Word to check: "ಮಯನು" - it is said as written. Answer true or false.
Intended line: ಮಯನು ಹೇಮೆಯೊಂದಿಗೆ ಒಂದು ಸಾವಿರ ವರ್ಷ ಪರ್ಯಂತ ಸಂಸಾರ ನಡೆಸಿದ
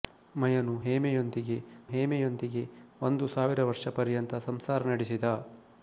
true